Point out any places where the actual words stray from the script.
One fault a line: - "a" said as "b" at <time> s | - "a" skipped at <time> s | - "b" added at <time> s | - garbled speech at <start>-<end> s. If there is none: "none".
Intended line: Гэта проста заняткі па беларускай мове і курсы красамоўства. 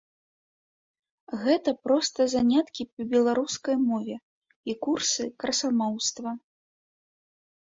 none